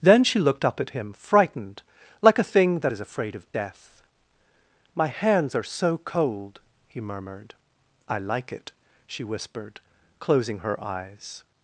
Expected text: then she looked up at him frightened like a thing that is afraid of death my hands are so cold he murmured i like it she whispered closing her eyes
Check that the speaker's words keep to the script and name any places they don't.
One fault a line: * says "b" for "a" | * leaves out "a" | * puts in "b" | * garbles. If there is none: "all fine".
all fine